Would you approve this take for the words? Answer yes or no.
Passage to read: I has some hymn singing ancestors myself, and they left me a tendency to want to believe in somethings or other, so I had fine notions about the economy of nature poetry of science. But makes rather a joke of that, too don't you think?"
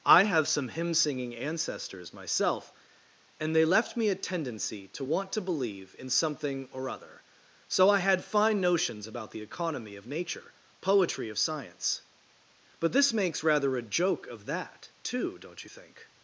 no